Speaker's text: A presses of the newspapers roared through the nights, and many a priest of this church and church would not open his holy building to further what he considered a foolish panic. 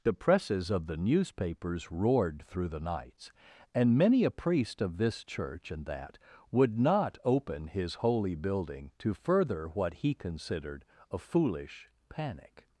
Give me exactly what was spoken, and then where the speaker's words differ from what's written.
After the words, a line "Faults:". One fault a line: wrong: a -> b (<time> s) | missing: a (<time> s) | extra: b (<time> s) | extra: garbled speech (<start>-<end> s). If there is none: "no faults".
The presses of the newspapers roared through the nights, and many a priest of this church and that would not open his holy building to further what he considered a foolish panic.
Faults:
wrong: A -> The (0.0 s)
wrong: church -> that (5.8 s)